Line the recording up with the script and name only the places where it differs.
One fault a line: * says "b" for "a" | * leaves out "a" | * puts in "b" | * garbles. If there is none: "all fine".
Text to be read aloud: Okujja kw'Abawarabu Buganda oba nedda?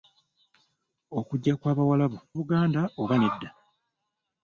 all fine